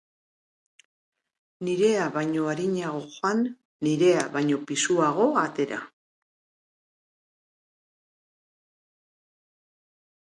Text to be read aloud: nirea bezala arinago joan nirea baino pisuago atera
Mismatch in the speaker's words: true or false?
true